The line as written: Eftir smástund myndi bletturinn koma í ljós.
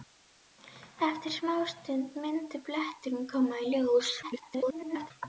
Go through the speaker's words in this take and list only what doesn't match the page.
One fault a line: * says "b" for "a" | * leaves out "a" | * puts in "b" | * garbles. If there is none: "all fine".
* garbles